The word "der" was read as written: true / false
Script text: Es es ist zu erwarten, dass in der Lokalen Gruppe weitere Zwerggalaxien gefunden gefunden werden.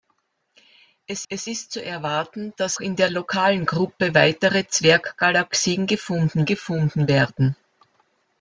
true